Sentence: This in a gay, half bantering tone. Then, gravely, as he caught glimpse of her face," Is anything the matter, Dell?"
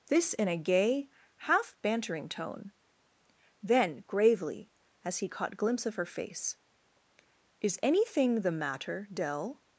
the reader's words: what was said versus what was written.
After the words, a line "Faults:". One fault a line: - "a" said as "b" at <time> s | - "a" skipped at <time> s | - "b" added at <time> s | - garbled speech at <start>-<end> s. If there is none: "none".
This in a gay, half bantering tone. Then, gravely, as he caught glimpse of her face," Is anything the matter, Dell?"
Faults:
none